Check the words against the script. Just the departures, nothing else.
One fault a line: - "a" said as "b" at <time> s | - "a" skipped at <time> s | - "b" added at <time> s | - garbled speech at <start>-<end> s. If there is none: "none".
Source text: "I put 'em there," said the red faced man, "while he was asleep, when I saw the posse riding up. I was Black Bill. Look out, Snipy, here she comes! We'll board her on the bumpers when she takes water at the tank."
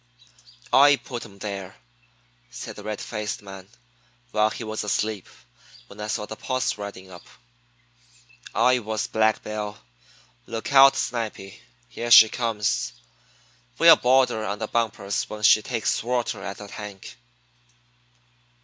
none